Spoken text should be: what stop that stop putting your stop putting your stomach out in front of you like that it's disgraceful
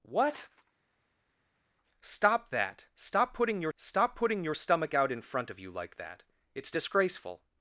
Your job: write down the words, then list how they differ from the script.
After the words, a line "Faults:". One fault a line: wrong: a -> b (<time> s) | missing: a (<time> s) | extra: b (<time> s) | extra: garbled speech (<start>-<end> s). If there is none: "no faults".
what stop that stop putting your stop putting your stomach out in front of you like that it's disgraceful
Faults:
no faults